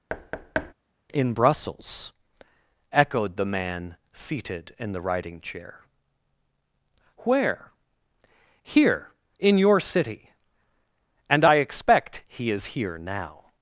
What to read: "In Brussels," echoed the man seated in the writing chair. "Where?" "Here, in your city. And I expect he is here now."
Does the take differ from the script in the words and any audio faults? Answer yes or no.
yes